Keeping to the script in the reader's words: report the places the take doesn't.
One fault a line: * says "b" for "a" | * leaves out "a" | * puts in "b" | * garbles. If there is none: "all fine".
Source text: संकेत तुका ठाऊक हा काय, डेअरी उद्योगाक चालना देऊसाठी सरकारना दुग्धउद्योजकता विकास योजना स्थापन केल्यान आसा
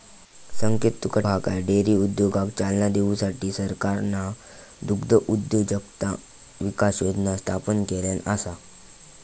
* leaves out "ठाऊक"